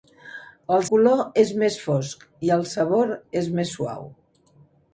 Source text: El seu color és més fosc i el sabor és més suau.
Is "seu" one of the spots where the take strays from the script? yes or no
yes